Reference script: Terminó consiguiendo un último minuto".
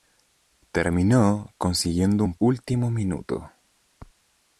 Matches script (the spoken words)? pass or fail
pass